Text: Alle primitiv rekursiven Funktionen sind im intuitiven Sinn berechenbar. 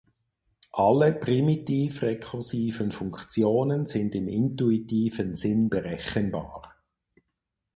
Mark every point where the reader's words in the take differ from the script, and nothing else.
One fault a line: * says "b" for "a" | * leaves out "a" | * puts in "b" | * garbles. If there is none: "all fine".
all fine